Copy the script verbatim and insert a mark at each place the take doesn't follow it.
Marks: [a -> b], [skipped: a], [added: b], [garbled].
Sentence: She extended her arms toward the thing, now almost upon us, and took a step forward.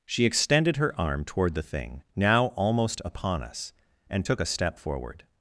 She extended her [arms -> arm] toward the thing, now almost upon us, and took a step forward.